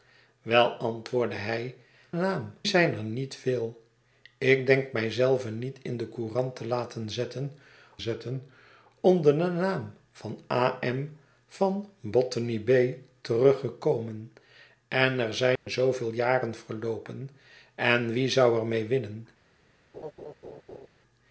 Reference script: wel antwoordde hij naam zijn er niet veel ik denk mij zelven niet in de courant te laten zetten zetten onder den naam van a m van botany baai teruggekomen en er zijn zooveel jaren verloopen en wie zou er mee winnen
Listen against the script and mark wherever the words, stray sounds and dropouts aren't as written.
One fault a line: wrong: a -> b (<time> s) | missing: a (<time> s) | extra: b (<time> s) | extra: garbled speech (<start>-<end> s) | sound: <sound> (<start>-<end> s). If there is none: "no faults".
sound: dropout (15.6-15.7 s)
sound: laugh (19.9-20.9 s)